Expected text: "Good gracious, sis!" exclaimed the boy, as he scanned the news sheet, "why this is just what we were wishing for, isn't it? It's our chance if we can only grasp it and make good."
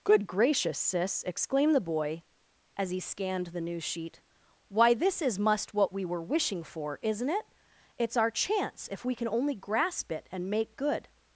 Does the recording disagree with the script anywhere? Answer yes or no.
yes